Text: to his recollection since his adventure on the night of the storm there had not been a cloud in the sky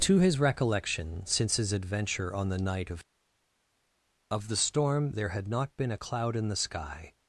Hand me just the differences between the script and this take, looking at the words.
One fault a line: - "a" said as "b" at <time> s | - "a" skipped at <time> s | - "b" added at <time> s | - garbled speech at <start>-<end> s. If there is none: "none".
- "of" added at 4.3 s